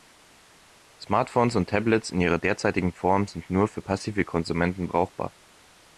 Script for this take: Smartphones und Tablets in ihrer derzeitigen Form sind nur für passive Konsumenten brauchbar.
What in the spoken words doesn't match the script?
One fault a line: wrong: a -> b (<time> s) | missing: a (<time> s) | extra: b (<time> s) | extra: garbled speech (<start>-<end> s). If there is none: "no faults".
no faults